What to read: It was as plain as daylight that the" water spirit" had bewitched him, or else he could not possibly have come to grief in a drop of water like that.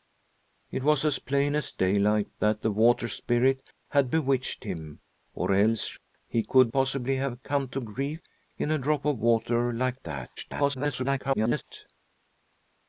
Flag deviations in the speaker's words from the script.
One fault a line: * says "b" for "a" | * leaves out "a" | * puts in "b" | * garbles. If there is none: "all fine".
* leaves out "not"
* garbles